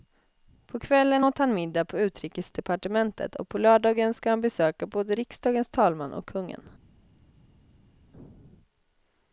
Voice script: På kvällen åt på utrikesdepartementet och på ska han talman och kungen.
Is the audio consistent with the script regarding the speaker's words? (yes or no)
no